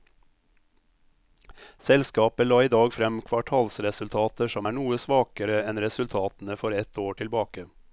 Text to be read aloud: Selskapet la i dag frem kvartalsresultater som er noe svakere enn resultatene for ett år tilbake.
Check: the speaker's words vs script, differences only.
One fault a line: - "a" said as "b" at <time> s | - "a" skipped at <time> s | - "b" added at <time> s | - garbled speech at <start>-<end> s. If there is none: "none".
none